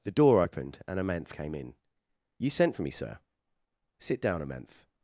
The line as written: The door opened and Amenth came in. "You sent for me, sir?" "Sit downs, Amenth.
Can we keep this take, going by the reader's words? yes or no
no